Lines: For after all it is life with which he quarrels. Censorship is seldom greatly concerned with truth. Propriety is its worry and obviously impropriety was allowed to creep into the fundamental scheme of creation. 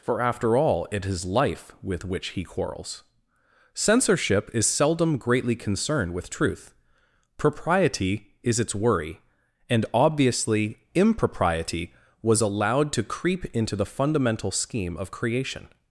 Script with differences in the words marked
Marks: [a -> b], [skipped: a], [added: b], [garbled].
For after all it is life with which he quarrels. Censorship is seldom greatly concerned with truth. Propriety is its worry and obviously impropriety was allowed to creep into the fundamental scheme of creation.